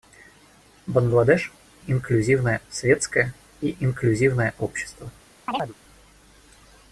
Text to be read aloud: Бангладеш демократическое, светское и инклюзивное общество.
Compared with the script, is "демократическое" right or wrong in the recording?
wrong